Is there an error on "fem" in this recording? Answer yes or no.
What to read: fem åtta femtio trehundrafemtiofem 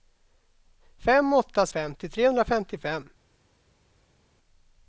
no